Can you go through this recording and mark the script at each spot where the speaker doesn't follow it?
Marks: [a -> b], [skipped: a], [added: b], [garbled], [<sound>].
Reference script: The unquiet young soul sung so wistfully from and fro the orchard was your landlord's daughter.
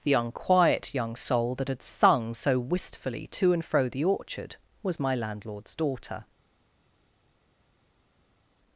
The unquiet young soul [added: that had] sung so wistfully [from -> to] and fro the orchard was [your -> my] landlord's daughter.